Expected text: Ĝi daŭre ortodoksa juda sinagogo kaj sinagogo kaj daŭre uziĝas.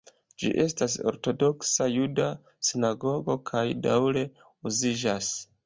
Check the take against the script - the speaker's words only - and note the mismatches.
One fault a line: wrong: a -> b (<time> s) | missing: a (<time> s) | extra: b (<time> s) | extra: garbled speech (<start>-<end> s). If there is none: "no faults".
wrong: daŭre -> estas (0.6 s)
missing: sinagogo kaj (3.7 s)